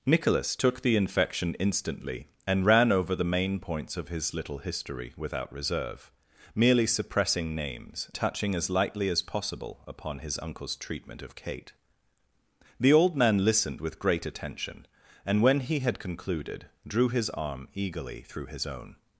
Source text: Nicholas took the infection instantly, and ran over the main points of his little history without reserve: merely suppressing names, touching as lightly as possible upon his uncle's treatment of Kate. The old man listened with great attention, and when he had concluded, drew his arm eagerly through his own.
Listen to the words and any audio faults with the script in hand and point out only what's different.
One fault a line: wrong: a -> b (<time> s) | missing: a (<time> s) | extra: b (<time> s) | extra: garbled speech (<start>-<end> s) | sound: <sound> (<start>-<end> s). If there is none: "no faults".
no faults